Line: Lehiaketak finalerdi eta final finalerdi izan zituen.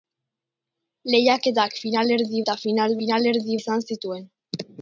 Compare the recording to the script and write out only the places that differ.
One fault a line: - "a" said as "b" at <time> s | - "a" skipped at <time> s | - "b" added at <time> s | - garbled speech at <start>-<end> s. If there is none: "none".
none